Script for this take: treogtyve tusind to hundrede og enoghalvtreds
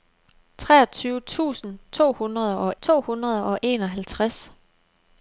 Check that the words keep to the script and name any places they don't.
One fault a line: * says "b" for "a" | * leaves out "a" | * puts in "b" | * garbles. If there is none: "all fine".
* puts in "to hundrede og"